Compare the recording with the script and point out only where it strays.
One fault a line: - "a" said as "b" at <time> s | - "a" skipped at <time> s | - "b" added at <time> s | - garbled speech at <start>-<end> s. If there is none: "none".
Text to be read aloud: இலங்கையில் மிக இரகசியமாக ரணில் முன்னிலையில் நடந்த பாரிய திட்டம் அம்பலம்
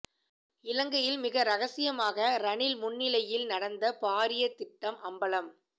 none